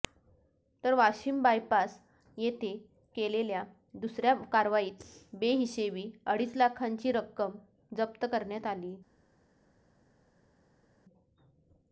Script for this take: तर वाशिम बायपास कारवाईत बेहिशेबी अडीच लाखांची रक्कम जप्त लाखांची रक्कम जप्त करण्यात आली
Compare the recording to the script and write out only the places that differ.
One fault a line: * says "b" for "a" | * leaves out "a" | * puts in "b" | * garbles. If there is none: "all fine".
* puts in "येथे केलेल्या दुसऱ्या"
* leaves out "लाखांची रक्कम जप्त"